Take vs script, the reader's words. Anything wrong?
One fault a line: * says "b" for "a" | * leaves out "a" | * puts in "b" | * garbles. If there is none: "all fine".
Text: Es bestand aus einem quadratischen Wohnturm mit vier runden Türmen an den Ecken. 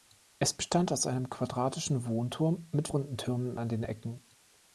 * leaves out "vier"